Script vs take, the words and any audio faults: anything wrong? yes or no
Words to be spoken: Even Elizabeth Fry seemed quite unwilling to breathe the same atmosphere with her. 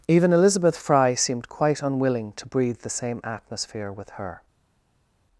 no